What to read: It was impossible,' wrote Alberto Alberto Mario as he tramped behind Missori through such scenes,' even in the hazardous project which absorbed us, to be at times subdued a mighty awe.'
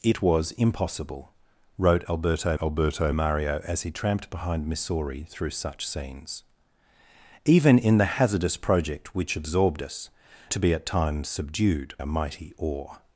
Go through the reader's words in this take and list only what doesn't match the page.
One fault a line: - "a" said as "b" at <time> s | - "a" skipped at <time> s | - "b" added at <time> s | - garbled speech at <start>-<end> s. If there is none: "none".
none